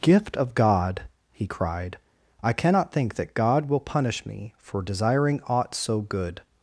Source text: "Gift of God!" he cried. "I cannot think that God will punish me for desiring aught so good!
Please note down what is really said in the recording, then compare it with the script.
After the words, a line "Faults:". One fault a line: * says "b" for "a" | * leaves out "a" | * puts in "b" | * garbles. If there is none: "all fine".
"Gift of God!" he cried. "I cannot think that God will punish me for desiring aught so good!
Faults:
all fine